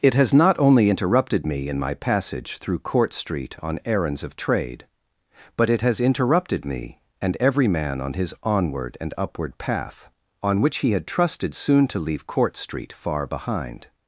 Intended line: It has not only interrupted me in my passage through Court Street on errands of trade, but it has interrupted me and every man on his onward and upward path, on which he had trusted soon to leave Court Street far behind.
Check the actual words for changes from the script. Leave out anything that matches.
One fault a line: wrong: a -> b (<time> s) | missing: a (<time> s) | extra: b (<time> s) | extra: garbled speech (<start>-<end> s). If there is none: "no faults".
no faults